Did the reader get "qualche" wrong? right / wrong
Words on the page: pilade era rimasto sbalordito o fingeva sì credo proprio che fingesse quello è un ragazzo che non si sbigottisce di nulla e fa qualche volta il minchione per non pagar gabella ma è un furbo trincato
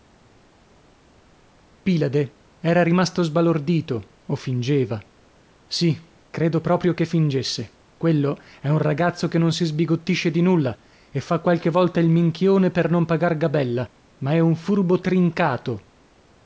right